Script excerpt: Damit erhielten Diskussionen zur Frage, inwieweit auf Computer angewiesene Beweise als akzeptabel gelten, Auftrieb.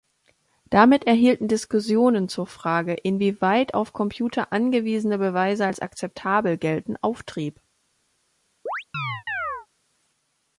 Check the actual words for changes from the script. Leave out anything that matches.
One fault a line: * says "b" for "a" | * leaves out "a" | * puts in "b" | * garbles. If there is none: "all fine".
all fine